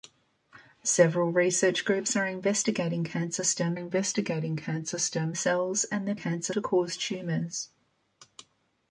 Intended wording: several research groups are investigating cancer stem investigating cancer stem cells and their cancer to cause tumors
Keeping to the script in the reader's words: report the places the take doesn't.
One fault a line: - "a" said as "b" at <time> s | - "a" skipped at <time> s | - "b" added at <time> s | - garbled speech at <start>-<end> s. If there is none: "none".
none